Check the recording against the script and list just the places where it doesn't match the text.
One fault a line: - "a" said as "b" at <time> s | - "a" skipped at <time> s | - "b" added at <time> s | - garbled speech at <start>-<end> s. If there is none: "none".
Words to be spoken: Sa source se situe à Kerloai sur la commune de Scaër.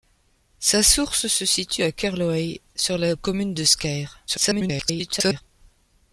- garbled speech at 4.3-5.4 s